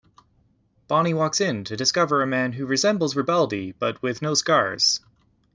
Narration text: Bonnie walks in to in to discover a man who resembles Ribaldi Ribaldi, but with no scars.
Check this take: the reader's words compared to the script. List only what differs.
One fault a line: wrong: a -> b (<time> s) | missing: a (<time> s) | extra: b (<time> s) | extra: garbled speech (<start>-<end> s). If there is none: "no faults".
missing: in to (1.8 s)
missing: Ribaldi (3.7 s)